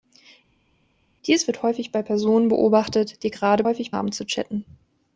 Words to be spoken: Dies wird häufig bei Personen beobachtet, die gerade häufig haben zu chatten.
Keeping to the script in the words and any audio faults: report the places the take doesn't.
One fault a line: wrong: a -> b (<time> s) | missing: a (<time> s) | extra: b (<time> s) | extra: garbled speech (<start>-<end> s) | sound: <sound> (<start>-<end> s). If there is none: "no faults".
no faults